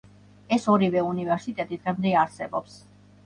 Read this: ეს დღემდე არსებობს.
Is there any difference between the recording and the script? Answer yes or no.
yes